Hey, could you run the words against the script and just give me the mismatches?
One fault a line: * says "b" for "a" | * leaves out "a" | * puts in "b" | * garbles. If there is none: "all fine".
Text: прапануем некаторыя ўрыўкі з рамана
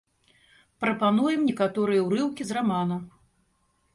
all fine